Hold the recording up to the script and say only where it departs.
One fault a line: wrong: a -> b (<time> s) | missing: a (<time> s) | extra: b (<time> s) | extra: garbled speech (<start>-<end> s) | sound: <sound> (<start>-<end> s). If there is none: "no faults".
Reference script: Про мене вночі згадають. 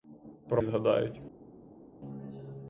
missing: мене вночі (0.6 s)